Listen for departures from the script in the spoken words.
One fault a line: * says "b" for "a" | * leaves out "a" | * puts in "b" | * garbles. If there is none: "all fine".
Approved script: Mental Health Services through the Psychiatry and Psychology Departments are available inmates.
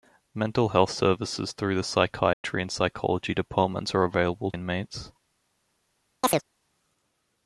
all fine